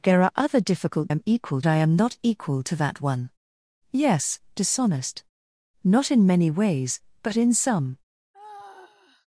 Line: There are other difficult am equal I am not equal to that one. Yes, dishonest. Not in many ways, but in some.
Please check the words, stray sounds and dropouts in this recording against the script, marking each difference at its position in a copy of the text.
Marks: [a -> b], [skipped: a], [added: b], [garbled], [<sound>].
There are other difficult am equal I am not equal to that one. Yes, dishonest. Not in many ways, but in some. [sigh]